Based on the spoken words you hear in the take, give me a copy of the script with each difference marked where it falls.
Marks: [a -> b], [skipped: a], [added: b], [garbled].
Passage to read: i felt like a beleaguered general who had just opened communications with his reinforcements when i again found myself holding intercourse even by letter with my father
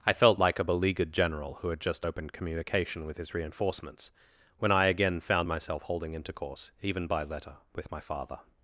i felt like a beleaguered general who had just opened [communications -> communication] with his reinforcements when i again found myself holding intercourse even by letter with my father